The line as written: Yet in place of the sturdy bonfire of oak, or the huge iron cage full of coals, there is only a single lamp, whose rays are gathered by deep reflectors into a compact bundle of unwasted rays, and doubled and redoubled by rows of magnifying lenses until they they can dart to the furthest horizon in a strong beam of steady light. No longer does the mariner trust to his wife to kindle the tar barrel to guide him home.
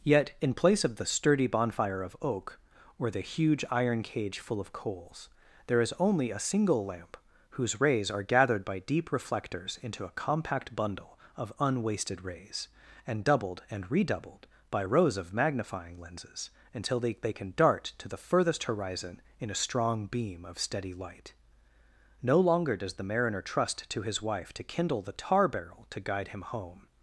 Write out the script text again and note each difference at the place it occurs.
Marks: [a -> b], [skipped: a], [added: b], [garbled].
Yet in place of the sturdy bonfire of oak, or the huge iron cage full of coals, there is only a single lamp, whose rays are gathered by deep reflectors into a compact bundle of unwasted rays, and doubled and redoubled by rows of magnifying lenses until they they can dart to the furthest horizon in a strong beam of steady light. No longer does the mariner trust to his wife to kindle the tar barrel to guide him home.